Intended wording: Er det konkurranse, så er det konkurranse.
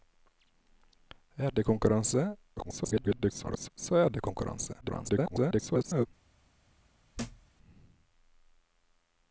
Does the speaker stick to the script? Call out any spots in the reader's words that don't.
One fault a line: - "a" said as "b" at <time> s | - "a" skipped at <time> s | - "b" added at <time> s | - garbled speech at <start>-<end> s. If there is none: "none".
- garbled speech at 2.6-3.7 s
- garbled speech at 4.8-6.1 s